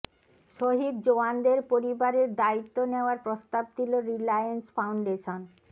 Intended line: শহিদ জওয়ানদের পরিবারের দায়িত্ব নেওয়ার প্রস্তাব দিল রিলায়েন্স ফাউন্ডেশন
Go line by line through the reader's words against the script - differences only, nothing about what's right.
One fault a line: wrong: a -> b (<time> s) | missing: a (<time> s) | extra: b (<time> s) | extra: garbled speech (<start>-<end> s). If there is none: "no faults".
no faults